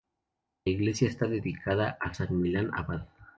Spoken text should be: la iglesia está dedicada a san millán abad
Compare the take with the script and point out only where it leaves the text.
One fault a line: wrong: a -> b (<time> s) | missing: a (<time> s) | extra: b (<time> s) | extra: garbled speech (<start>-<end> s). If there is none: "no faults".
no faults